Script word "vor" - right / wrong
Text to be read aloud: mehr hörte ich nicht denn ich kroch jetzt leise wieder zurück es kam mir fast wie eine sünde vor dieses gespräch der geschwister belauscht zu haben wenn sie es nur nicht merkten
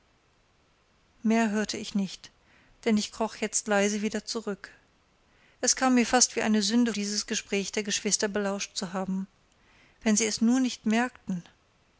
wrong